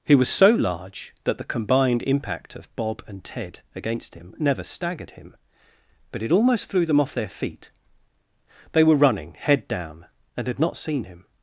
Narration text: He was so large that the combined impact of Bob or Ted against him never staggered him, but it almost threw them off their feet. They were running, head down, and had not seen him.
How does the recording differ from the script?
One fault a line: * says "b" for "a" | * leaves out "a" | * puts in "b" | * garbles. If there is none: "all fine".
* says "and" for "or"